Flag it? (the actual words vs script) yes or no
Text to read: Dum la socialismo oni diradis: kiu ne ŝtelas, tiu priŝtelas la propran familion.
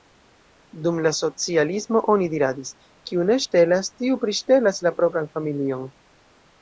no